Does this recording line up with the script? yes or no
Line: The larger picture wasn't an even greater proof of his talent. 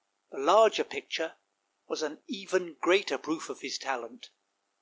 no